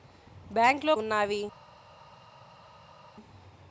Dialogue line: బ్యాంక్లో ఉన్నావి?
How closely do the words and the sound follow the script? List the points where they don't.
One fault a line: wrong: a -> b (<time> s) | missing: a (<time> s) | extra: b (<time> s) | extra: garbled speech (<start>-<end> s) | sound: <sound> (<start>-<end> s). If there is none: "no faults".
no faults